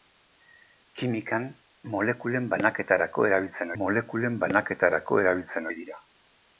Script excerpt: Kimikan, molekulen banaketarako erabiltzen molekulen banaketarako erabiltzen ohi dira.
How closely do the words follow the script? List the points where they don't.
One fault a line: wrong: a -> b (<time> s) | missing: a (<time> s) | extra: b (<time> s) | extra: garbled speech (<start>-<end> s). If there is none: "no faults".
no faults